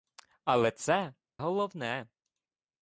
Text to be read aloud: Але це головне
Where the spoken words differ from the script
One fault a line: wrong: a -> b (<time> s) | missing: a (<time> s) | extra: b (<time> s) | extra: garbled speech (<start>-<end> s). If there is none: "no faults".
no faults